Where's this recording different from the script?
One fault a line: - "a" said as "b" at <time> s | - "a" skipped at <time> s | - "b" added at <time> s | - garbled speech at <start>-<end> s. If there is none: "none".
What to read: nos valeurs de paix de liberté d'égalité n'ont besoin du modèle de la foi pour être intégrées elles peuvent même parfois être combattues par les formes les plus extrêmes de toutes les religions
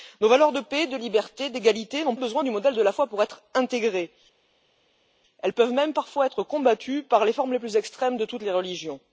none